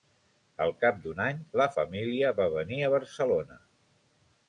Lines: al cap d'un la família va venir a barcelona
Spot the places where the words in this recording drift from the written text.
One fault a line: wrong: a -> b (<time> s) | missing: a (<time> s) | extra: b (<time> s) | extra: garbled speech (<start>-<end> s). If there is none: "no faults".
extra: any (1.2 s)